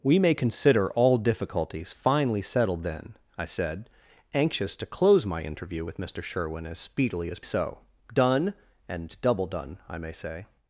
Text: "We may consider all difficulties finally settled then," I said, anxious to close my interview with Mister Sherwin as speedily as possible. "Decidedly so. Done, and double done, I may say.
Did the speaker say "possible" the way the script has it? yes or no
no